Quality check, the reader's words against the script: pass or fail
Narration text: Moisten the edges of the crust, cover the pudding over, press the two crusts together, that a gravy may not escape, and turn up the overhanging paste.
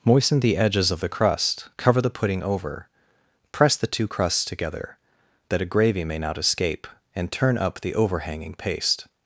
pass